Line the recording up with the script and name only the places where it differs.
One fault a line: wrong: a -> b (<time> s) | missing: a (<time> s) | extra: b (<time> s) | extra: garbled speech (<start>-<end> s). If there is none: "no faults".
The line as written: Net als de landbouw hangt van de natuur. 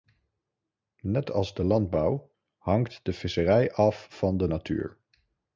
extra: de visserij af (3.0 s)